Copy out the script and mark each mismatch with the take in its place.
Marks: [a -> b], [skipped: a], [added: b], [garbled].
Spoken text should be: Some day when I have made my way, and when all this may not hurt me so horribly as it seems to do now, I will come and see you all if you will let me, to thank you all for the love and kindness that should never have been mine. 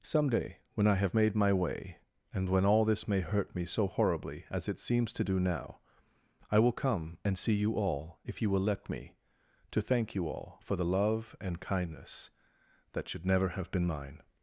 Some day when I have made my way, and when all this may [skipped: not] hurt me so horribly as it seems to do now, I will come and see you all if you will let me, to thank you all for the love and kindness that should never have been mine.